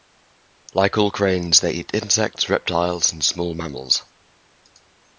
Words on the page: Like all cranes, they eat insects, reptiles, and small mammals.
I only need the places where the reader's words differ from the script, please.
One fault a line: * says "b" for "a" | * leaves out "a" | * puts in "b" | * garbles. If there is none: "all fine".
all fine